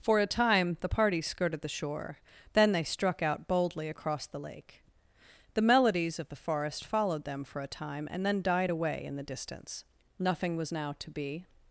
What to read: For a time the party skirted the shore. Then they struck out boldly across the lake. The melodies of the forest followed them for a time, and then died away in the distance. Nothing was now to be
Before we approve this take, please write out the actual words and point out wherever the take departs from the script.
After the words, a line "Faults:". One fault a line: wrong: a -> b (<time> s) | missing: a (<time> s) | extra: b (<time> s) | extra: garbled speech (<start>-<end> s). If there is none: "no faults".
For a time the party skirted the shore. Then they struck out boldly across the lake. The melodies of the forest followed them for a time, and then died away in the distance. Nothing was now to be
Faults:
no faults